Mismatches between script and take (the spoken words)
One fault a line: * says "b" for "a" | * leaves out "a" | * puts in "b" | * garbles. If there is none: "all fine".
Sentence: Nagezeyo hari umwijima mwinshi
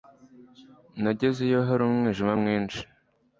all fine